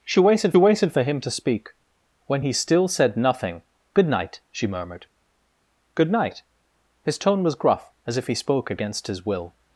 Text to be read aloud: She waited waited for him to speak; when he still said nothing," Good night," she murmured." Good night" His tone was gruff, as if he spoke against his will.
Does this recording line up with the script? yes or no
yes